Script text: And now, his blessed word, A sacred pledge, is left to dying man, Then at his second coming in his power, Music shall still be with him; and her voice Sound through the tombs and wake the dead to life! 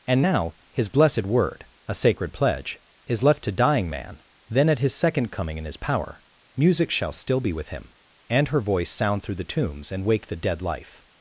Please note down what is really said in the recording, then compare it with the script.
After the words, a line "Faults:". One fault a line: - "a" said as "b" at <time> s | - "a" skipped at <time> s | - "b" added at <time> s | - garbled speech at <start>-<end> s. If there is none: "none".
And now, his blessed word, A sacred pledge, is left to dying man, Then at his second coming in his power, Music shall still be with him; and her voice Sound through the tombs and wake the dead life!
Faults:
- "to" skipped at 10.6 s